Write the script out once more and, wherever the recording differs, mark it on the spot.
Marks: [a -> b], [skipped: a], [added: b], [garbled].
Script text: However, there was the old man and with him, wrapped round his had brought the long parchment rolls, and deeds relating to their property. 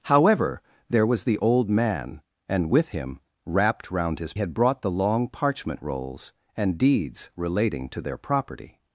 However, there was the old man and with him, wrapped round his had brought the long parchment rolls, and deeds relating to their property.